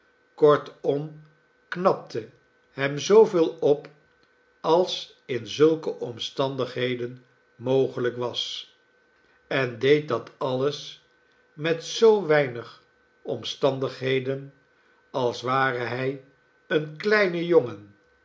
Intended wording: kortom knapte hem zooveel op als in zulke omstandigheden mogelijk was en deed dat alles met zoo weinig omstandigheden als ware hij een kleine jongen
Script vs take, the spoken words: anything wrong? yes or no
no